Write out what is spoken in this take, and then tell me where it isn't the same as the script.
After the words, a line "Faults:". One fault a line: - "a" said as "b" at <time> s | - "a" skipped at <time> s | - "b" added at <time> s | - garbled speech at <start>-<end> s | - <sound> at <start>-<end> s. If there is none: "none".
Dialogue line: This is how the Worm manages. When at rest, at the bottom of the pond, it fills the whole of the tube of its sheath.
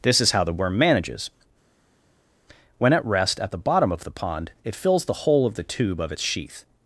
This is how the Worm manages. When at rest, at the bottom of the pond, it fills the whole of the tube of its sheath.
Faults:
none